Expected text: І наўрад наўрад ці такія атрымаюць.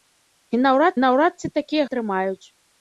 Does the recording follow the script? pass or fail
pass